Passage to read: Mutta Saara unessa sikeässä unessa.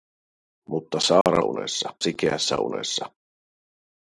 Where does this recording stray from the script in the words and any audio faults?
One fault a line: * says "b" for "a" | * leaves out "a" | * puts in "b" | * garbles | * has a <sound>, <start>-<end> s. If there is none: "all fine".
* has a dropout, 1.2-1.3 s